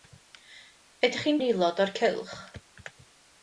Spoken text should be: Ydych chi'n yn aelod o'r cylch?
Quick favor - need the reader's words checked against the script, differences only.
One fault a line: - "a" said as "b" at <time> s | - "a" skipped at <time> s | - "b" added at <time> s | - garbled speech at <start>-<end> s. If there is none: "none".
none